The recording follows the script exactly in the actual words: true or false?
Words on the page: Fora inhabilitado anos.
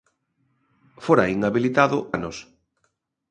true